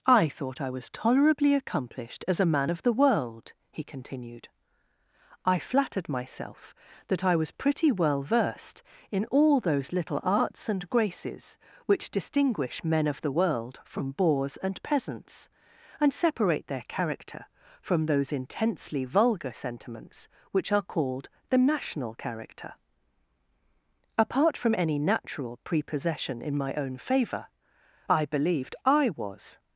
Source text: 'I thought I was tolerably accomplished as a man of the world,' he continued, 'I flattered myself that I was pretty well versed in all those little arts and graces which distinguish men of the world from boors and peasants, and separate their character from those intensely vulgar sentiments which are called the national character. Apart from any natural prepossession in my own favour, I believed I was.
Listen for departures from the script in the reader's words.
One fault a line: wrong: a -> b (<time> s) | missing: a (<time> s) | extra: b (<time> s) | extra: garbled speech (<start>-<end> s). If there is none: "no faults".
no faults